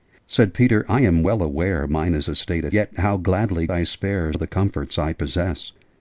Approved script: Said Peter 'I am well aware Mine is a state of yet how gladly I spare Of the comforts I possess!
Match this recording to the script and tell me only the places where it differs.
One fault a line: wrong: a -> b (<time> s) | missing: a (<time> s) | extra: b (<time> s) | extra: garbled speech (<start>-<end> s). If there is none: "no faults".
no faults